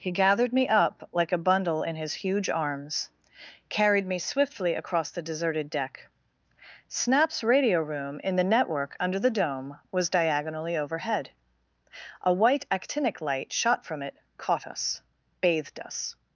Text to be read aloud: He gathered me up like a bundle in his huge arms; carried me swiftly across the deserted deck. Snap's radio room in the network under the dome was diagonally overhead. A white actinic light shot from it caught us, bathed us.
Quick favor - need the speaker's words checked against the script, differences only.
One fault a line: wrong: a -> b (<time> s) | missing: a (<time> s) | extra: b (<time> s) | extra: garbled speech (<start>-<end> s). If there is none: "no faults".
no faults